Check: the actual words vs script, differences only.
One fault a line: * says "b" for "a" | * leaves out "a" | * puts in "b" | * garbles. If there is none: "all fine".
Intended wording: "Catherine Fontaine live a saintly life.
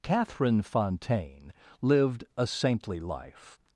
* says "lived" for "live"